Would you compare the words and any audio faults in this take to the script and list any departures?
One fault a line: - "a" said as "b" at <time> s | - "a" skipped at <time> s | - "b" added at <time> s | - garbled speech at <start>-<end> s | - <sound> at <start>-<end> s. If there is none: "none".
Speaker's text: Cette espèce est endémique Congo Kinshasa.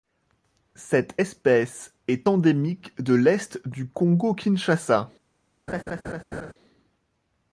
- "de l'Est du" added at 3.0 s
- laugh at 5.7-6.5 s